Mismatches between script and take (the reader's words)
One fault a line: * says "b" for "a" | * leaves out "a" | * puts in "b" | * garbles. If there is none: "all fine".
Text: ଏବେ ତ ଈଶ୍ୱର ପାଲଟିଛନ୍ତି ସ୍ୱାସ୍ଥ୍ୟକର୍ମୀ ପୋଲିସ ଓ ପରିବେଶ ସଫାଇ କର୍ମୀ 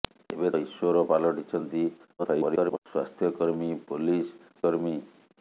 * leaves out "ତ"
* garbles
* leaves out "ଓ ପରିବେଶ ସଫାଇ"